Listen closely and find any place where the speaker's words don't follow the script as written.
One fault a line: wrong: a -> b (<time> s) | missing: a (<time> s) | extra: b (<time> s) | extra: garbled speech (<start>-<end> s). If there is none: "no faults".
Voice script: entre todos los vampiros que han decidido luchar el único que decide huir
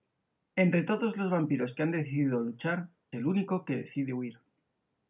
no faults